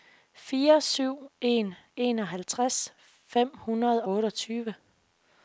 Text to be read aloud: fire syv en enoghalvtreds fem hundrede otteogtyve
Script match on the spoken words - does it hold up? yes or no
yes